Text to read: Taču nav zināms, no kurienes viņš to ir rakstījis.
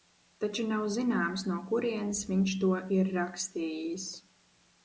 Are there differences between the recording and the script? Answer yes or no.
no